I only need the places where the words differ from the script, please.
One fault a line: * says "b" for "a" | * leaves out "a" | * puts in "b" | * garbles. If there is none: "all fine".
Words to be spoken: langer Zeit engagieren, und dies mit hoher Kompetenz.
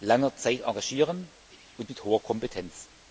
* leaves out "dies"